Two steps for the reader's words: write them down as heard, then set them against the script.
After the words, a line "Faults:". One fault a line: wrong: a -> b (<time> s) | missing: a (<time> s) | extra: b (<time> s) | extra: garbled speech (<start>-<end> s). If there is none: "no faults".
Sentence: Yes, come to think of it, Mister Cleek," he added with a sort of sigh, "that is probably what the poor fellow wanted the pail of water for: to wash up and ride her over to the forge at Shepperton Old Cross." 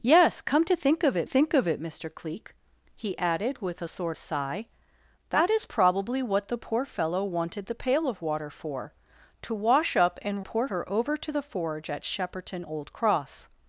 Yes, come to think of it think of it, Mister Cleek," he added with a sort sigh, "that is probably what the poor fellow wanted the pail of water for: to wash up and poor her over to the forge at Shepperton Old Cross."
Faults:
extra: think of it (1.2 s)
missing: of (4.2 s)
wrong: ride -> poor (10.4 s)